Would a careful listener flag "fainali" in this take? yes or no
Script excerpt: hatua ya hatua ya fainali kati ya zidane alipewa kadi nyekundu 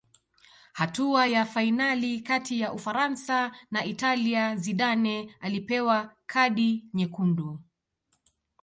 yes